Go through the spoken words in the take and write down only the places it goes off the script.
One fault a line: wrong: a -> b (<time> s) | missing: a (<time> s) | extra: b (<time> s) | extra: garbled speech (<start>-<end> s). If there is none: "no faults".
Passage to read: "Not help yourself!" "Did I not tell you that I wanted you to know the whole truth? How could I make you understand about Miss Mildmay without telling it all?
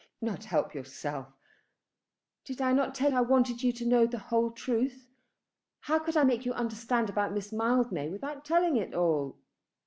missing: you that (3.1 s)